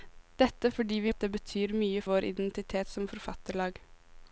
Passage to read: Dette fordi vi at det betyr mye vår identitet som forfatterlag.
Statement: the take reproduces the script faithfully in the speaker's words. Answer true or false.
true